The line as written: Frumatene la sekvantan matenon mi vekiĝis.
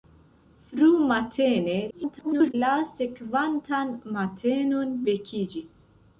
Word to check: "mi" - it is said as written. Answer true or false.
false